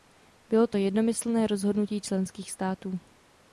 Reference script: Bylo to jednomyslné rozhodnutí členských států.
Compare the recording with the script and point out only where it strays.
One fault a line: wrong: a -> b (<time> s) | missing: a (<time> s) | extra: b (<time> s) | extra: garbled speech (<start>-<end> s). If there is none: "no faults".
no faults